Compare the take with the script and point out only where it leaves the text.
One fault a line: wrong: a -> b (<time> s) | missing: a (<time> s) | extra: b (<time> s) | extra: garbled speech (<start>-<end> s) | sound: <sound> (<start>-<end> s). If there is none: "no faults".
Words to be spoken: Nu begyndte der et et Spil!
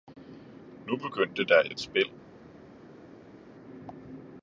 no faults